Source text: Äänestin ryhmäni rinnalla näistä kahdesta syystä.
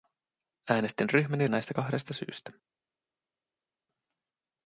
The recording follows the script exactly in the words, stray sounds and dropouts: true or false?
false